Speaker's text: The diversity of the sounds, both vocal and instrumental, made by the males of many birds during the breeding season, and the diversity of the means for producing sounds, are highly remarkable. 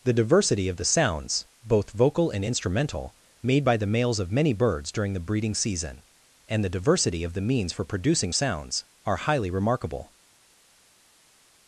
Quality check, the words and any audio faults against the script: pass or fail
pass